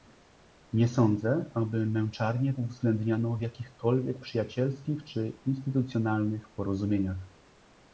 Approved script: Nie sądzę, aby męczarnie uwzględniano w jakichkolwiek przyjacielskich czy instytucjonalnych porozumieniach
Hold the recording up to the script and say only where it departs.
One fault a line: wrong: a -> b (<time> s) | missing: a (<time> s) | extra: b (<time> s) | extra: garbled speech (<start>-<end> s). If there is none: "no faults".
no faults